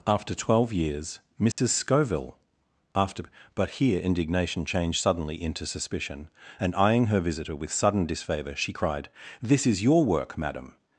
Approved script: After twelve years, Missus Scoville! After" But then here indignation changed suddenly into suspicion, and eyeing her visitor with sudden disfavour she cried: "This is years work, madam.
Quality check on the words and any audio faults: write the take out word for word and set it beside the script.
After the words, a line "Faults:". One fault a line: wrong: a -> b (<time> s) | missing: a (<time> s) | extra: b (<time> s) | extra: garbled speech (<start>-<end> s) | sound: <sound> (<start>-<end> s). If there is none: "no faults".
After twelve years, Missus Scoville! After" But here indignation changed suddenly into suspicion, and eyeing her visitor with sudden disfavour she cried: "This is your work, madam.
Faults:
sound: dropout (1.5-1.6 s)
missing: then (3.8 s)
wrong: years -> your (9.8 s)